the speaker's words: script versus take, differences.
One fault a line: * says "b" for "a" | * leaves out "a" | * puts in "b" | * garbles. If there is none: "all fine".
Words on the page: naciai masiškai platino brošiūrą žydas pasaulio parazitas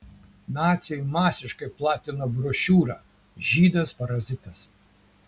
* leaves out "pasaulio"